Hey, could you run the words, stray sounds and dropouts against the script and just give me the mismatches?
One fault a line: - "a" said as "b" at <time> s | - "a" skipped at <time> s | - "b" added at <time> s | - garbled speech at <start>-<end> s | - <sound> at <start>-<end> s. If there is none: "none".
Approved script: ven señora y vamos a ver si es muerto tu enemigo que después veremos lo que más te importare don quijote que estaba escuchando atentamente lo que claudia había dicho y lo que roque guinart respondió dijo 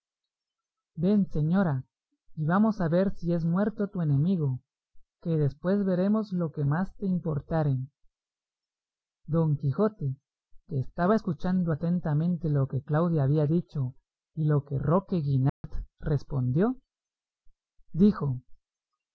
- dropout at 15.5-15.6 s